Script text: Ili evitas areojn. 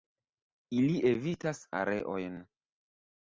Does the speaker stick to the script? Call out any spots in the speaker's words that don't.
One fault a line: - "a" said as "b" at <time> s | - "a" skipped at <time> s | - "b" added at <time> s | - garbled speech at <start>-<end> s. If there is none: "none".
none